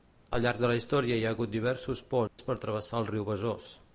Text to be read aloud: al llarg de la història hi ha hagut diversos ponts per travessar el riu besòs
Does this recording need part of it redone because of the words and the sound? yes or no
yes